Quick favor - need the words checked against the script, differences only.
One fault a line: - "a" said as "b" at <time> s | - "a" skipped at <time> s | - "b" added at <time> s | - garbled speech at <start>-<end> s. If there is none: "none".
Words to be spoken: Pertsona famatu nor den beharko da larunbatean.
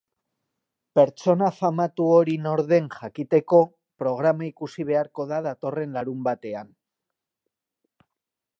- "hori" added at 2.1 s
- "jakiteko programa ikusi" added at 3.0 s
- "datorren" added at 5.5 s